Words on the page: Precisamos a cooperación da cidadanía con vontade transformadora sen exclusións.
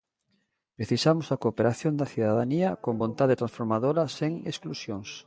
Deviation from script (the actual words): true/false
false